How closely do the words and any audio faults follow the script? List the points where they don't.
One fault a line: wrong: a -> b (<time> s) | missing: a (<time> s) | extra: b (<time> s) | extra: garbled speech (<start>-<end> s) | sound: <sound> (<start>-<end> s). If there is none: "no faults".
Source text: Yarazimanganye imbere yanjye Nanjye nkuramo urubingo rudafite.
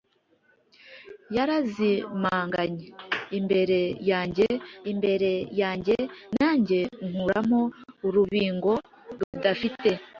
extra: imbere yanjye (4.9 s)
sound: dropout (9.2-9.3 s)